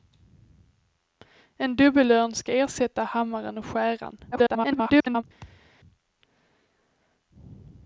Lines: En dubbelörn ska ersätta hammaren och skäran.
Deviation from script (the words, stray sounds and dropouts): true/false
true